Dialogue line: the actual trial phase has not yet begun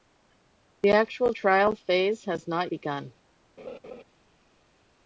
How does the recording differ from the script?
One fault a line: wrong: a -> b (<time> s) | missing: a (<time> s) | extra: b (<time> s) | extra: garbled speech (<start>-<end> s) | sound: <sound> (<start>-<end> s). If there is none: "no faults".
missing: yet (2.7 s)
sound: laugh (3.6-4.0 s)